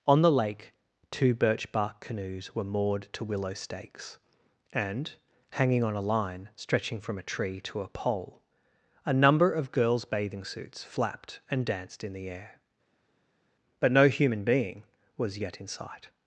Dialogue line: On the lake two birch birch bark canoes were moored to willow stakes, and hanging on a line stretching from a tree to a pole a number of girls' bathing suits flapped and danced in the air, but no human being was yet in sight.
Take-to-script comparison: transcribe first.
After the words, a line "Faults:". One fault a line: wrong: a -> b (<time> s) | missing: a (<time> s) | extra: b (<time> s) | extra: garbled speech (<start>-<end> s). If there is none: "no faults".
On the lake two birch bark canoes were moored to willow stakes, and hanging on a line stretching from a tree to a pole a number of girls' bathing suits flapped and danced in the air, but no human being was yet in sight.
Faults:
missing: birch (1.7 s)